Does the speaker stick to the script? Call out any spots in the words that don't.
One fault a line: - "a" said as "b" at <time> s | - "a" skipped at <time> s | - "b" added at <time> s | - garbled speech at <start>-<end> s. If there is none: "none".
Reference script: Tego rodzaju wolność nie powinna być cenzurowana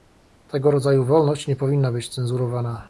none